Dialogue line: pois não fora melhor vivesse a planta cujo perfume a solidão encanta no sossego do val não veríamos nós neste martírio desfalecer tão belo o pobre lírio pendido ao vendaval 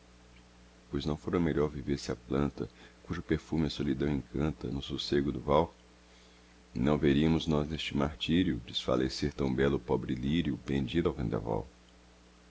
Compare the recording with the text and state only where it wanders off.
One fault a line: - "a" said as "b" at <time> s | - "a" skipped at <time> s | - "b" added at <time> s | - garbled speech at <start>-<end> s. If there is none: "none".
none